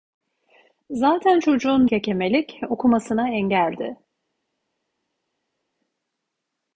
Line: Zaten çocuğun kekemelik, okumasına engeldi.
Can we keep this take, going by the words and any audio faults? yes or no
yes